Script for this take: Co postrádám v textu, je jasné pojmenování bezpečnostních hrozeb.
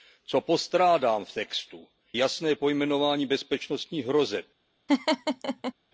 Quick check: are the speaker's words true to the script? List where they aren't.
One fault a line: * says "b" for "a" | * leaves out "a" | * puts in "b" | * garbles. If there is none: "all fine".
* leaves out "je"